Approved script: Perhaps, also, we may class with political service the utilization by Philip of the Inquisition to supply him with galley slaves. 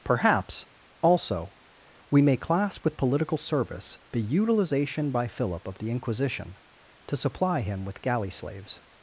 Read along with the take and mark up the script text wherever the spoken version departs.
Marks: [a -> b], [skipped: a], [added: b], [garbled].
Perhaps, also, we may class with political service the utilization by Philip of the Inquisition to supply him with galley slaves.